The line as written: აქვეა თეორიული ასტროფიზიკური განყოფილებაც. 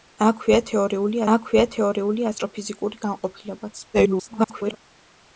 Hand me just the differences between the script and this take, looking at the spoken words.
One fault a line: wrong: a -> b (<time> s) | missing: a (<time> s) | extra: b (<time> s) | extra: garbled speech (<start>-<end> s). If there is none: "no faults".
extra: აქვეა თეორიული (1.3 s)
extra: garbled speech (3.9-4.8 s)